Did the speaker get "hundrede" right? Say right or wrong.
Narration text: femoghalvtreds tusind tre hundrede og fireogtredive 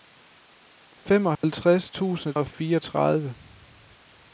wrong